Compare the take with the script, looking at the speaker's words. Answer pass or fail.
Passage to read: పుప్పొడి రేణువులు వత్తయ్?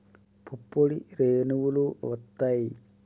pass